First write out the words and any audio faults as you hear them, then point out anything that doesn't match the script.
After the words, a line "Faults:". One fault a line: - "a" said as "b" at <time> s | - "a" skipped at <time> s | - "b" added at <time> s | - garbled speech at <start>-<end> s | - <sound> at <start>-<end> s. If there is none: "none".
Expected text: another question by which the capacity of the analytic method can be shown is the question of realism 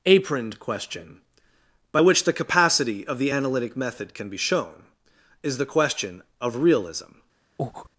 aproned question by which the capacity of the analytic method can be shown is the question of realism
Faults:
- "another" said as "aproned" at 0.1 s
- breath at 7.6-7.9 s